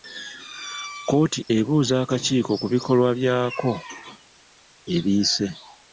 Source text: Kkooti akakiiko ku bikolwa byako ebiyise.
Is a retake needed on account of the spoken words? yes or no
yes